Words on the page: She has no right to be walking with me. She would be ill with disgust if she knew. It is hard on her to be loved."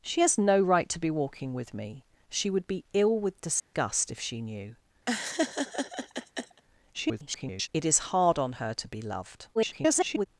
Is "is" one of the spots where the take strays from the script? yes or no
no